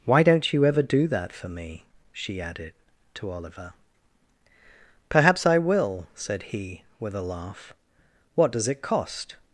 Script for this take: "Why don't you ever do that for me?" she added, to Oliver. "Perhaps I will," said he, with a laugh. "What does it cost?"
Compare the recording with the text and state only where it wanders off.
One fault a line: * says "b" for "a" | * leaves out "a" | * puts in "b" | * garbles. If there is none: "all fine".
all fine